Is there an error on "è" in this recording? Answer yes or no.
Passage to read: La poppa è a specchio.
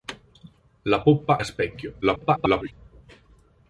yes